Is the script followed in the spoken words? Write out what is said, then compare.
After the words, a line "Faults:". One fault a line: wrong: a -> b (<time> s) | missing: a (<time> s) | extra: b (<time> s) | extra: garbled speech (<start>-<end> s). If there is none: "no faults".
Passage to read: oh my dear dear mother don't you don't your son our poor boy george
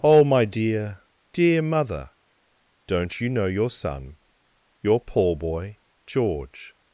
oh my dear dear mother don't you know your son your poor boy george
Faults:
wrong: don't -> know (3.3 s)
wrong: our -> your (4.8 s)